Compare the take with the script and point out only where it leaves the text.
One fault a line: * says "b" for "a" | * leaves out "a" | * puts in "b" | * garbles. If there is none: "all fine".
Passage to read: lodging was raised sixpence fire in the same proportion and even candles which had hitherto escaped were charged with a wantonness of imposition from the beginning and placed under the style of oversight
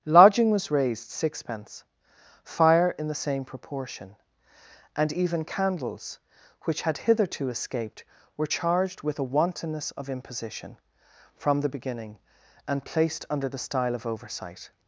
all fine